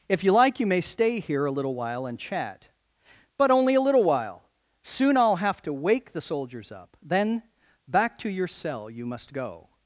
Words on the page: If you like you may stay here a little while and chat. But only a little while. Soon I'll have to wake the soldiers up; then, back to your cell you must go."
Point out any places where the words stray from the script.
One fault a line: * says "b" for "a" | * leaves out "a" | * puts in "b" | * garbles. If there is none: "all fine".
all fine